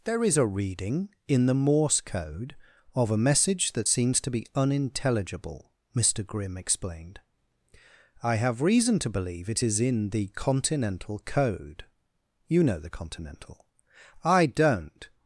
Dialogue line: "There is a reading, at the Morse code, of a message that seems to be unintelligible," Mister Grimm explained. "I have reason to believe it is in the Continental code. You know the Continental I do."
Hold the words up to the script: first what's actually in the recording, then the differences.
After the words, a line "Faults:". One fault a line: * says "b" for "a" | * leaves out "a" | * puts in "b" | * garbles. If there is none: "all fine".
"There is a reading, in the Morse code, of a message that seems to be unintelligible," Mister Grimm explained. "I have reason to believe it is in the Continental code. You know the Continental I don't."
Faults:
* says "in" for "at"
* says "don't" for "do"